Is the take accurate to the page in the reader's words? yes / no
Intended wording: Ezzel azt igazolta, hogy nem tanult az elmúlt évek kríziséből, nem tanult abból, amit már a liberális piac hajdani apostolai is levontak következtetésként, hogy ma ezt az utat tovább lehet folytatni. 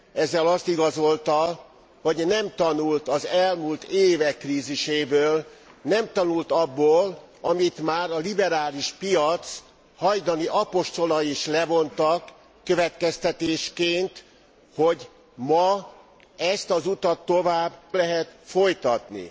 yes